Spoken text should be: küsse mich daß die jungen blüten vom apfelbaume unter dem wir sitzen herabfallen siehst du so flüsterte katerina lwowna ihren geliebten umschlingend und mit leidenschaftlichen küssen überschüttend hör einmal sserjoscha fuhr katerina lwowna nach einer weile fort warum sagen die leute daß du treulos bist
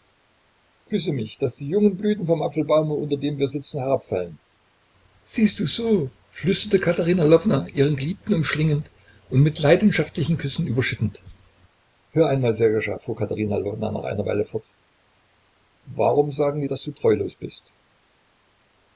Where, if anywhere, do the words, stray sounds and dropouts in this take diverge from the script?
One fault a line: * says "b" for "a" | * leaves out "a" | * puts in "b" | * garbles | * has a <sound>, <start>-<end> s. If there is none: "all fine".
* leaves out "leute"